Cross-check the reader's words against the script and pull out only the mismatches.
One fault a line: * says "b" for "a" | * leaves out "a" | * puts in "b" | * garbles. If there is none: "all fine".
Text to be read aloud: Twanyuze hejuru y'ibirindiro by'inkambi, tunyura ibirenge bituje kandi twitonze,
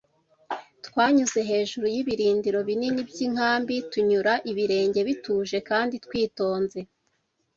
* puts in "binini"